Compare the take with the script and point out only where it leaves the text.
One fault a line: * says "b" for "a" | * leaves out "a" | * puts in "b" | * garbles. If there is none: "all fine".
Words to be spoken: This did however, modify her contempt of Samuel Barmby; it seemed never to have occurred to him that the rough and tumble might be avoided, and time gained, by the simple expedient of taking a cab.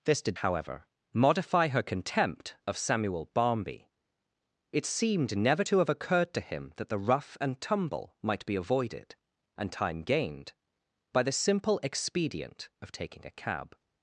all fine